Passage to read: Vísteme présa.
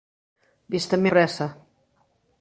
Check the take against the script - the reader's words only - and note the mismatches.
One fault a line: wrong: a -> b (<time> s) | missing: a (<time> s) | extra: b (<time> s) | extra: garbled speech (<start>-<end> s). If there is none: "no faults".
no faults